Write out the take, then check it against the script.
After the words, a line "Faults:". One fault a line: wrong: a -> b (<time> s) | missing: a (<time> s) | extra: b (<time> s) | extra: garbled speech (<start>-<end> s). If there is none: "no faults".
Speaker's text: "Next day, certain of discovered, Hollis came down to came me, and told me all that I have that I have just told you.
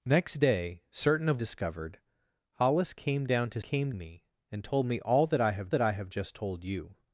"Next day, certain of discovered, Hollis came down to came me, and told me all that I have that I have just told you.
Faults:
no faults